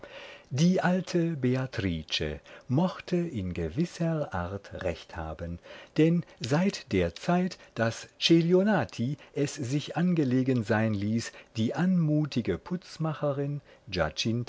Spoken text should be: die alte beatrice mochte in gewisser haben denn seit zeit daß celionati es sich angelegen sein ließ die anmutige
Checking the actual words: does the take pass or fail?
fail